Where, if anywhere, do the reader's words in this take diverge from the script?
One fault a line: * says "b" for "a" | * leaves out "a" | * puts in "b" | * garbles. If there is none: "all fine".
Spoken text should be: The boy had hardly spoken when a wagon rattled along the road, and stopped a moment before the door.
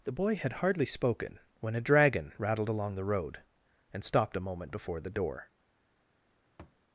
* says "dragon" for "wagon"